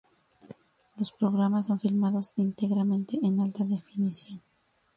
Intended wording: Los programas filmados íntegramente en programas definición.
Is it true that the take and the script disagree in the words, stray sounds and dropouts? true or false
true